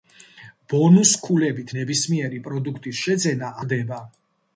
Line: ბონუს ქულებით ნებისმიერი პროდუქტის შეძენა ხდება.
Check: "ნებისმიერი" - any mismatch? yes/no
no